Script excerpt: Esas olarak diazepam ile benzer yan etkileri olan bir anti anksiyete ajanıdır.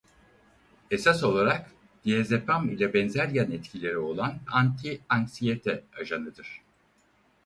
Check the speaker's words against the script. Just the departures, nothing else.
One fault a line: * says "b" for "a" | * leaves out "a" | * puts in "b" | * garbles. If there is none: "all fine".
* leaves out "bir"